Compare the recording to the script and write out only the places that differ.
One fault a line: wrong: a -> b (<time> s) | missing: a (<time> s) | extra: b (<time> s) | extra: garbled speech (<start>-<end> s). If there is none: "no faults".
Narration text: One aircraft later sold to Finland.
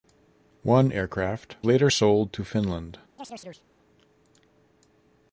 no faults